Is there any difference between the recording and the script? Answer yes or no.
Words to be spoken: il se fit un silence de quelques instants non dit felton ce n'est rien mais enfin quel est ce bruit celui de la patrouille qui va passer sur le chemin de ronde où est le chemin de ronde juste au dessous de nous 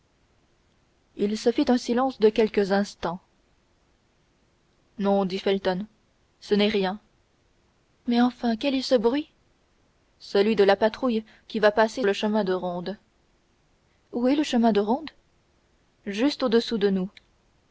yes